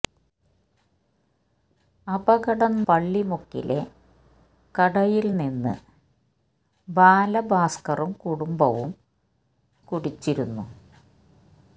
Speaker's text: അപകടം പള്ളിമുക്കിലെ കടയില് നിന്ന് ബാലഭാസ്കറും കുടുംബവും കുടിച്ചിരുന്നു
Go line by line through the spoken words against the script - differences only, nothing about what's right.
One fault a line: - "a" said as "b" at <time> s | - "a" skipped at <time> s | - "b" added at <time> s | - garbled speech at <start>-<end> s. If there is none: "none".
none